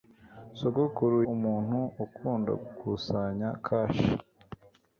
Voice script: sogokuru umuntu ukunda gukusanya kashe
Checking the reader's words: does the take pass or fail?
pass